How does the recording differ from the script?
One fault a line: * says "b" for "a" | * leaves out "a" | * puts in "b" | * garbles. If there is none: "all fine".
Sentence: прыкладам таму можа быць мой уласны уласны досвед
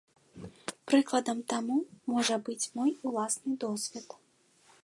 * leaves out "уласны"